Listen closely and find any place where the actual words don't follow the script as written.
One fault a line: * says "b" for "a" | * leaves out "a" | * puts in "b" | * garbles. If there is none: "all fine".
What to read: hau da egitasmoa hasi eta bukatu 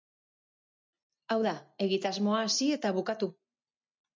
all fine